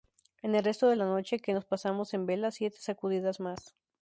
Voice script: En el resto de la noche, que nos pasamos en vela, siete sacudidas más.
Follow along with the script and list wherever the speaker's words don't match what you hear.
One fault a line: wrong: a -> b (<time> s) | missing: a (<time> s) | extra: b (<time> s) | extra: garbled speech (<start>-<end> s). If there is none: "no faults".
no faults